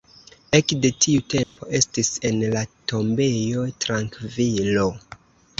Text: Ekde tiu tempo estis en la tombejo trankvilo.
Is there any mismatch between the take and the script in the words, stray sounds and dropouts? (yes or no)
yes